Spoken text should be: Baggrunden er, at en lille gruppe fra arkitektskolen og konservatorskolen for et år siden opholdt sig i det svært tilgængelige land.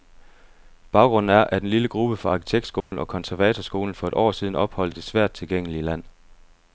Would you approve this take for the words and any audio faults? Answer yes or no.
no